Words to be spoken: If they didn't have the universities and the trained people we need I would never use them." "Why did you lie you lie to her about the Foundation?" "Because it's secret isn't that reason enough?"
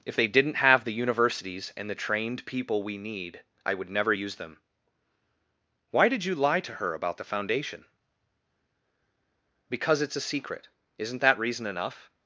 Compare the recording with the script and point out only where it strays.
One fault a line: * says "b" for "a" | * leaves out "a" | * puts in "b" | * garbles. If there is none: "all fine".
* leaves out "you lie"
* puts in "a"